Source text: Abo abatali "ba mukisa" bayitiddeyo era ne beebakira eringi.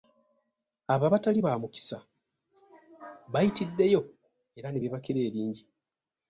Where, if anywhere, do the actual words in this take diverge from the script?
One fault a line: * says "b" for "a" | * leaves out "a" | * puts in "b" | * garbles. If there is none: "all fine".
all fine